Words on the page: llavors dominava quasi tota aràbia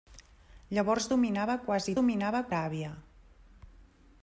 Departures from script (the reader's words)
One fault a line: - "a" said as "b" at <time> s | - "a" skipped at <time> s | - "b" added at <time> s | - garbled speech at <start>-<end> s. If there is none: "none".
- "tota" said as "dominava" at 2.0 s